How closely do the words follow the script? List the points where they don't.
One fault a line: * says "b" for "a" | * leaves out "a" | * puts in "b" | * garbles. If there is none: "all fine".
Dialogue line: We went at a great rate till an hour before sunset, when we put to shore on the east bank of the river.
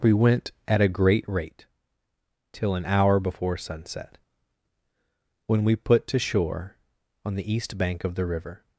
all fine